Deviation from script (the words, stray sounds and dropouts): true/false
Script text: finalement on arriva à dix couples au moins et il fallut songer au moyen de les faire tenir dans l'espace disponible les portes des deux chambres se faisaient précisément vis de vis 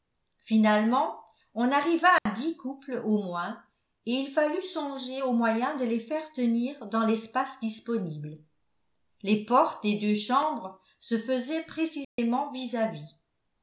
true